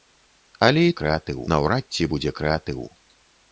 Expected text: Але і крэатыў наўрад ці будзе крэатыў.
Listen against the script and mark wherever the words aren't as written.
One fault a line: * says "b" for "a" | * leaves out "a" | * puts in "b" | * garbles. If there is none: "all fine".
all fine